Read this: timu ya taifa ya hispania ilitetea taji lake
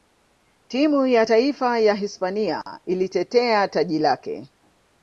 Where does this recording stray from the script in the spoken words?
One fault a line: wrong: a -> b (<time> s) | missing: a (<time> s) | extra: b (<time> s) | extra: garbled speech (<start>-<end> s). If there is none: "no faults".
no faults